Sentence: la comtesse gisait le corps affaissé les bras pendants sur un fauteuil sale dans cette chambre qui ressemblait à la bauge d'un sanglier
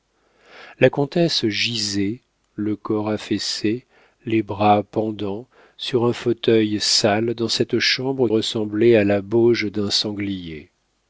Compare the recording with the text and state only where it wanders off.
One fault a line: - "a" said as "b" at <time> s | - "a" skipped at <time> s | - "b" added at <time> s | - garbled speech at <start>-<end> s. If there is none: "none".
- "qui" skipped at 8.3 s